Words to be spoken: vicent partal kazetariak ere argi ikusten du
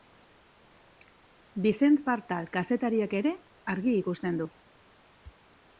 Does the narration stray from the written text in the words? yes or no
no